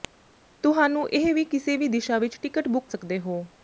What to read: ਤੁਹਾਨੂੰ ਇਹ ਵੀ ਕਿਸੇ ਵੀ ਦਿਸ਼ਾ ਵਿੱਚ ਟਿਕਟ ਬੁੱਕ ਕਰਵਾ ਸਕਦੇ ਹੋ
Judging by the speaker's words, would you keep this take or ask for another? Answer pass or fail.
fail